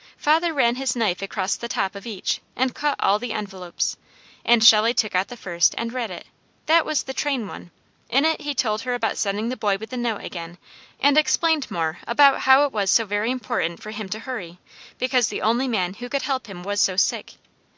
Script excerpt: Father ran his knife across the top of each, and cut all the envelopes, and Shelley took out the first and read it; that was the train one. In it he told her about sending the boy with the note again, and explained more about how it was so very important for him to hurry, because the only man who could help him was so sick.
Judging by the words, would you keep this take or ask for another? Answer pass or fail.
pass